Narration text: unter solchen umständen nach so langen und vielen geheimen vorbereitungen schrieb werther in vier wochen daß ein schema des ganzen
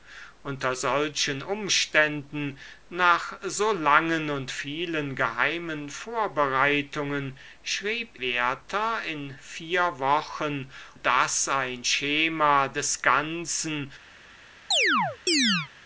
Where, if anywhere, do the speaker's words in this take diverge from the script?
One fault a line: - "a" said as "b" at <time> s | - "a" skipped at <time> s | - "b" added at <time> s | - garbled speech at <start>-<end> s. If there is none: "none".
none